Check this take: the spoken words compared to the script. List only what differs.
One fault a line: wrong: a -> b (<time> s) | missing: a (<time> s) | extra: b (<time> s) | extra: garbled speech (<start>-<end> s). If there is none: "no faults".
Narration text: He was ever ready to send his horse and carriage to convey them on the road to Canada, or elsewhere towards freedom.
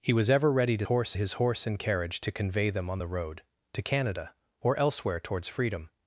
wrong: send -> horse (0.8 s)